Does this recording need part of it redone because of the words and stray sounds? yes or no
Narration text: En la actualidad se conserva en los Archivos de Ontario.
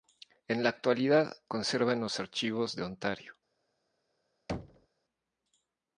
yes